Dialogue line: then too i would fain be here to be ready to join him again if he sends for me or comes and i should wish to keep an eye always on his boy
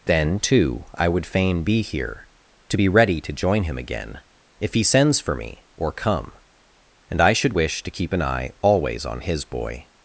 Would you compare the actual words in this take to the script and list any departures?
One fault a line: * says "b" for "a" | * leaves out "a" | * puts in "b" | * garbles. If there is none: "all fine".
* says "come" for "comes"